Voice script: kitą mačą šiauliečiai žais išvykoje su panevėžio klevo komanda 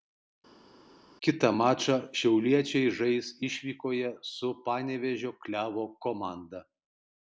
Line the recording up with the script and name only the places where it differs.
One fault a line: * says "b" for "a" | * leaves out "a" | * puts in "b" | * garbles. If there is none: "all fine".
all fine